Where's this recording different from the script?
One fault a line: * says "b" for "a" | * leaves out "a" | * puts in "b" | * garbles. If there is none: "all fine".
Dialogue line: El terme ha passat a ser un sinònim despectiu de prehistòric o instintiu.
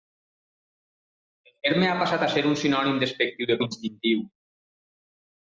* leaves out "prehistòric"